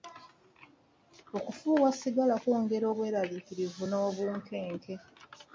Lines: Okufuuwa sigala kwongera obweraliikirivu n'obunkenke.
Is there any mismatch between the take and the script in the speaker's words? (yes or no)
no